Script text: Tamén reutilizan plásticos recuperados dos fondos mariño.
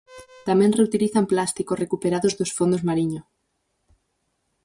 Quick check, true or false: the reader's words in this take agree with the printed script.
true